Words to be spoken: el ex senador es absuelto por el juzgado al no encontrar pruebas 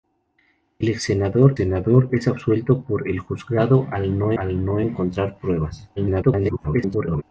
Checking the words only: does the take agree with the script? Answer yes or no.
no